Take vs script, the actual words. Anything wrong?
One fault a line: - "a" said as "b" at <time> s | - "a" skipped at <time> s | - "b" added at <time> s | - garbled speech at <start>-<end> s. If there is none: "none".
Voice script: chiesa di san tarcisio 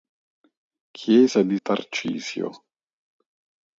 - "san" skipped at 1.6 s